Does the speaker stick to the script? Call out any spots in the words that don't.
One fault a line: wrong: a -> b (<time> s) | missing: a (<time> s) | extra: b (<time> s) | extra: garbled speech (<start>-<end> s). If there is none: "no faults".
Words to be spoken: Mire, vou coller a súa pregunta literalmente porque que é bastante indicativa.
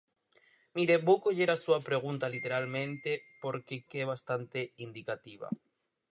no faults